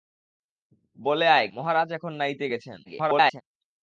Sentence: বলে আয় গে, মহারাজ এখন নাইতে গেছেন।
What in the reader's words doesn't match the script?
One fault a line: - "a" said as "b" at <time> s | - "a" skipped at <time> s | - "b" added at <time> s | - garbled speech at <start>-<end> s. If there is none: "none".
- "গে" skipped at 1.5 s
- garbled speech at 2.9-3.4 s